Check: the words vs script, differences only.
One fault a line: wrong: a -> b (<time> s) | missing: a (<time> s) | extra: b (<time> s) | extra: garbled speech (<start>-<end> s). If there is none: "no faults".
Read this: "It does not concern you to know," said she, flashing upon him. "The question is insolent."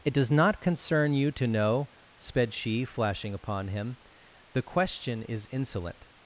wrong: said -> sped (2.2 s)